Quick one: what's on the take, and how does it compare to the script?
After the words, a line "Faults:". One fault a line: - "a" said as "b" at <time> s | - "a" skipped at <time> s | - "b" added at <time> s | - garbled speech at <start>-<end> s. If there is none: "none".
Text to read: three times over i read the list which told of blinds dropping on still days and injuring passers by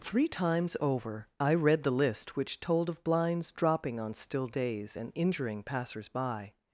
three times over i read the list which told of blinds dropping on still days and injuring passers by
Faults:
none